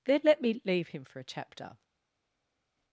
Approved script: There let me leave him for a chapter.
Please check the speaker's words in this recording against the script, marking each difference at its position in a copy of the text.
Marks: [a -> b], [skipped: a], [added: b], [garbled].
[There -> Then] let me leave him for a chapter.